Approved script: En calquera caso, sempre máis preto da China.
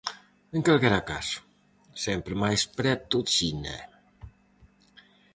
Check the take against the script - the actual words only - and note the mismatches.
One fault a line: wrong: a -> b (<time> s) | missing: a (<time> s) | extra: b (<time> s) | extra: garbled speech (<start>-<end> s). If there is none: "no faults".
missing: da (3.2 s)